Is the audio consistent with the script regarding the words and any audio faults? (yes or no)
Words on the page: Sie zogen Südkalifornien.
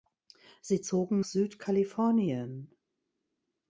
yes